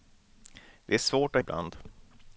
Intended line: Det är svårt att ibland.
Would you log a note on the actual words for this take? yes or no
no